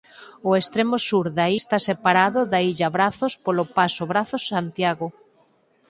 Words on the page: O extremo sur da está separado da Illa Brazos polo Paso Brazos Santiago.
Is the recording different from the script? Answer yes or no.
no